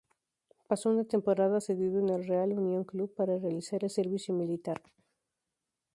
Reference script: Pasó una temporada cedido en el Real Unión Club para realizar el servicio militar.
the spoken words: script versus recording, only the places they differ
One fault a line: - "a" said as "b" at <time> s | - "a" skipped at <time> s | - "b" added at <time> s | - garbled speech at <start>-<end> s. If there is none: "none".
none